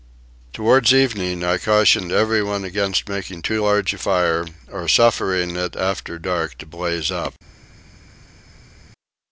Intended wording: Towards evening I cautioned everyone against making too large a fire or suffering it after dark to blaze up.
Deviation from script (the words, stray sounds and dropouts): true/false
false